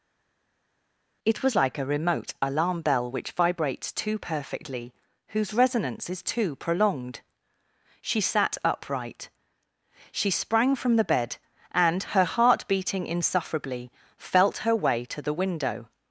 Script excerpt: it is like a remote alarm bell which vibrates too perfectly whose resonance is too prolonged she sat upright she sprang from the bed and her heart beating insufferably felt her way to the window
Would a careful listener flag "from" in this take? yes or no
no